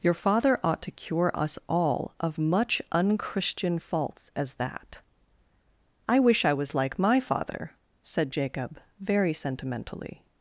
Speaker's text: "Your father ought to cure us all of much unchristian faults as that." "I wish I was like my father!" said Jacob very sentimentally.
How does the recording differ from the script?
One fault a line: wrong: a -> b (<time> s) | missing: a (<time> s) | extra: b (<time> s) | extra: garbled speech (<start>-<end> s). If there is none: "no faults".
no faults